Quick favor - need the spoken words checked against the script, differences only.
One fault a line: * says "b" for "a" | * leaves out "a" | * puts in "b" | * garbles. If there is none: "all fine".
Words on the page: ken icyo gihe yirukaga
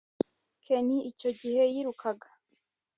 all fine